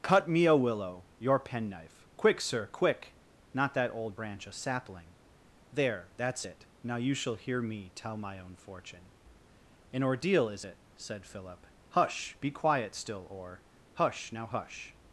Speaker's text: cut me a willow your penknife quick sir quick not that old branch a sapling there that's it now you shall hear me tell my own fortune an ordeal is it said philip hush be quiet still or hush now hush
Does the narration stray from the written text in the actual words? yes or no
no